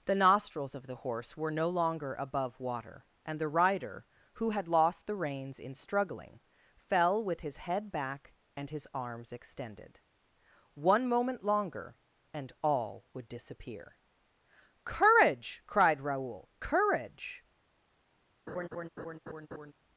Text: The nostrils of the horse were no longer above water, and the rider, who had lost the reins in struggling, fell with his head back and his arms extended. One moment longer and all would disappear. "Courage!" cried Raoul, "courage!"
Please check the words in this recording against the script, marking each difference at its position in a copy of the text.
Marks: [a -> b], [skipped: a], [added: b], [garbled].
The nostrils of the horse were no longer above water, and the rider, who had lost the reins in struggling, fell with his head back and his arms extended. One moment longer and all would disappear. "Courage!" cried Raoul, "courage!"